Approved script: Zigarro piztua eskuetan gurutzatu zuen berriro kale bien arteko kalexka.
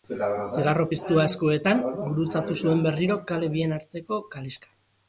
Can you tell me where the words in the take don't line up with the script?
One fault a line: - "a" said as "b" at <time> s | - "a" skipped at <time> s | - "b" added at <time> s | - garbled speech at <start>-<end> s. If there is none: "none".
none